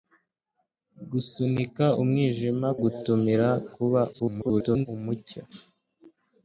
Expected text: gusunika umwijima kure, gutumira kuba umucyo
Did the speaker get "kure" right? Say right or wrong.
wrong